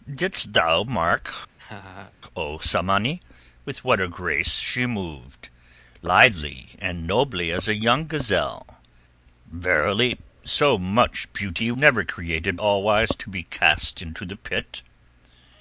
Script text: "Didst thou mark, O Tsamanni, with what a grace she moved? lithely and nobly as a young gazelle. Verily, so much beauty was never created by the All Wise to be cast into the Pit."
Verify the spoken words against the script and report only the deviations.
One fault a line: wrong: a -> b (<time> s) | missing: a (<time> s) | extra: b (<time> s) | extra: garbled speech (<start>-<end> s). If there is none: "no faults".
missing: was (11.7 s)
missing: by the (12.6 s)